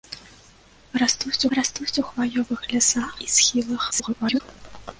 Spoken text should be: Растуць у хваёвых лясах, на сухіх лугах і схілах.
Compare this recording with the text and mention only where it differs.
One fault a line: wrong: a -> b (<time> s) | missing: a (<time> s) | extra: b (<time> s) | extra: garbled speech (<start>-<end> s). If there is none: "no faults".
extra: растуць (1.6 s)
missing: на сухіх лугах (3.2 s)
extra: garbled speech (3.9-4.4 s)